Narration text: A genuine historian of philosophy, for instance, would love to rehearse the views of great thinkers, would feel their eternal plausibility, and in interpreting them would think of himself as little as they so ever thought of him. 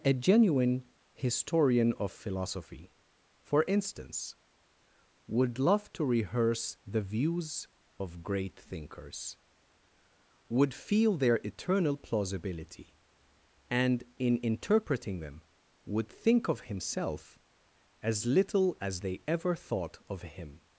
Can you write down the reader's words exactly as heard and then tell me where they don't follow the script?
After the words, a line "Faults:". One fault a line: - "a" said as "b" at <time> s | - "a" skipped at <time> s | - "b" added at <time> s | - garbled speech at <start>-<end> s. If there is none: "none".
A genuine historian of philosophy, for instance, would love to rehearse the views of great thinkers, would feel their eternal plausibility, and in interpreting them would think of himself as little as they ever thought of him.
Faults:
- "so" skipped at 19.2 s